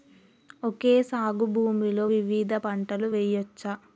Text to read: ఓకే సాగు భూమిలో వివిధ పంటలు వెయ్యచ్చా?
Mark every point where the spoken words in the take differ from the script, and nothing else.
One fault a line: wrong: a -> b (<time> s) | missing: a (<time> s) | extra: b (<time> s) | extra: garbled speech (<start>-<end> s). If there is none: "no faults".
no faults